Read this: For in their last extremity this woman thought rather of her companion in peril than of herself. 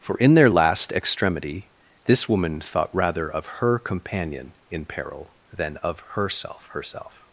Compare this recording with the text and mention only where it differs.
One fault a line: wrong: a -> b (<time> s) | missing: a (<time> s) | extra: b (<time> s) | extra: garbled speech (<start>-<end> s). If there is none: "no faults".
extra: herself (6.7 s)